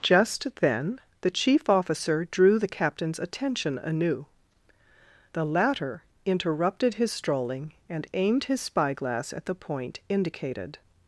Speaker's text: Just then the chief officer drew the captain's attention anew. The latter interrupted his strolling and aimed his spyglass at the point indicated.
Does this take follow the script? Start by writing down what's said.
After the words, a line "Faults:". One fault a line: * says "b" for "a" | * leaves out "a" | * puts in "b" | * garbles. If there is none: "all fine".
Just then the chief officer drew the captain's attention anew. The latter interrupted his strolling and aimed his spyglass at the point indicated.
Faults:
all fine